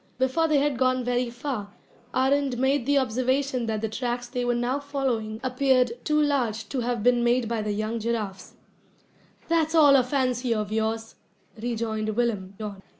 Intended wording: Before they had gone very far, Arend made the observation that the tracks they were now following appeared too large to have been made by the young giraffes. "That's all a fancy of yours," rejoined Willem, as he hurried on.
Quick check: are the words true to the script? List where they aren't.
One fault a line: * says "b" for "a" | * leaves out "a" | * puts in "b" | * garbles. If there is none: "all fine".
* leaves out "as he hurried"